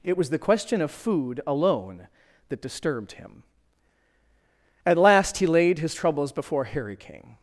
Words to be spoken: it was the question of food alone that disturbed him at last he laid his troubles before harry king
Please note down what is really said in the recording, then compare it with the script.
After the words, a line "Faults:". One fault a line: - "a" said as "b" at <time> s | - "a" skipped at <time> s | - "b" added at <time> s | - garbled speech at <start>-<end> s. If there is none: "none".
it was the question of food alone that disturbed him at last he laid his troubles before harry king
Faults:
none